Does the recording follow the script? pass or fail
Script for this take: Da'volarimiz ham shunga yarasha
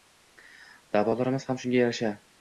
pass